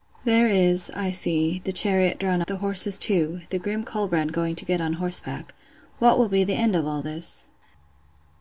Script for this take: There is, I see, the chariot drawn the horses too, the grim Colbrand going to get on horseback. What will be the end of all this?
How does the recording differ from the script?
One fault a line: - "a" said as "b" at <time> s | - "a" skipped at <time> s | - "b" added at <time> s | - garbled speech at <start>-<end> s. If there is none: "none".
none